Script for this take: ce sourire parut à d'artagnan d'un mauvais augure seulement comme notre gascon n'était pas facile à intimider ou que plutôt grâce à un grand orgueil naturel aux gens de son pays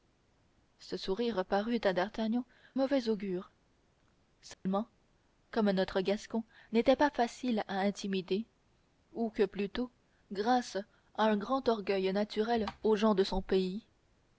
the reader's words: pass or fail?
fail